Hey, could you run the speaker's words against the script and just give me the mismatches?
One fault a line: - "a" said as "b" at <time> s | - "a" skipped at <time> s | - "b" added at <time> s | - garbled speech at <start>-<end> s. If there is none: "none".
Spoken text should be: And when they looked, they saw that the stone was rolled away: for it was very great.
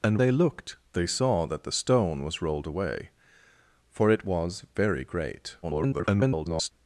- "when" skipped at 0.2 s
- garbled speech at 5.6-6.7 s